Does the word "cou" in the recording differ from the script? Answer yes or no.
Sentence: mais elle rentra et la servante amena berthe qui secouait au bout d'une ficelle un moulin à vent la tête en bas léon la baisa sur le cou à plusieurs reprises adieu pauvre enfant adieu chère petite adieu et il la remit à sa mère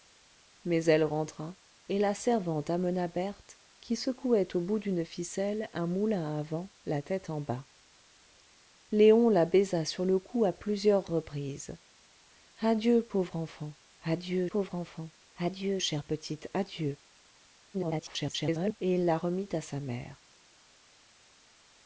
no